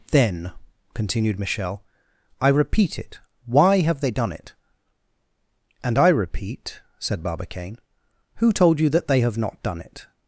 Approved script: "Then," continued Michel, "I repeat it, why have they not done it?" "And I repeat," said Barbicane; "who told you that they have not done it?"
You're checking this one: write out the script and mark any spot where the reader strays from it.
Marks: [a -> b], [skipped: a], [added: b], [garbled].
"Then," continued Michel, "I repeat it, why have they [skipped: not] done it?" "And I repeat," said Barbicane; "who told you that they have not done it?"